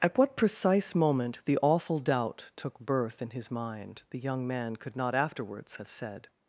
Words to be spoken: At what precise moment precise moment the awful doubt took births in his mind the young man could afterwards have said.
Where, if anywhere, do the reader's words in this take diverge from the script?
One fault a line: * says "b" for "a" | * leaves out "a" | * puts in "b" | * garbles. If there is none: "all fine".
* leaves out "precise moment"
* says "birth" for "births"
* puts in "not"